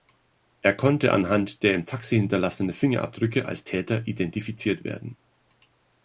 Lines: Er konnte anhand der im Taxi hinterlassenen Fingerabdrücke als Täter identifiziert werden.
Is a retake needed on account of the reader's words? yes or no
no